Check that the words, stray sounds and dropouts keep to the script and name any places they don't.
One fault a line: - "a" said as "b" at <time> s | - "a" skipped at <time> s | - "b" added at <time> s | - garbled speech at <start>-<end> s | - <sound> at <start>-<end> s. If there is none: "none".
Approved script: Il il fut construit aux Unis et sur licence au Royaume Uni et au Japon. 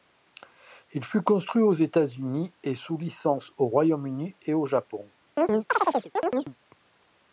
- "il" skipped at 1.1 s
- "États" added at 1.7 s
- "sur" said as "sous" at 2.7 s
- chirp at 5.4-6.6 s